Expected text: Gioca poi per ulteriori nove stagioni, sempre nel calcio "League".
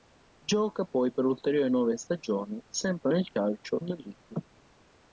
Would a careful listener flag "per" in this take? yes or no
no